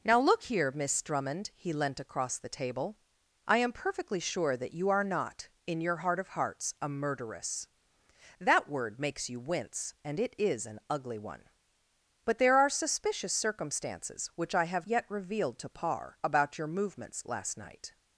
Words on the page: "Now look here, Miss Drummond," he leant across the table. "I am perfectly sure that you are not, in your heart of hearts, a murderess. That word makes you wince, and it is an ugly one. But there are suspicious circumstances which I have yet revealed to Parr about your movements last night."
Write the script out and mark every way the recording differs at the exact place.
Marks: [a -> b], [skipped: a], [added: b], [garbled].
"Now look here, Miss Drummond," he leant across the table. "I am perfectly sure that you are not, in your heart of hearts, a murderess. That word makes you wince, and it is an ugly one. But there are suspicious circumstances which I have yet revealed to Parr about your movements last night."